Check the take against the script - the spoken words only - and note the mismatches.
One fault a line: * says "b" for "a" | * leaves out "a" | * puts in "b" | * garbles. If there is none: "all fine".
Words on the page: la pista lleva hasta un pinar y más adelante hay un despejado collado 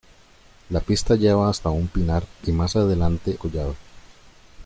* leaves out "hay un despejado"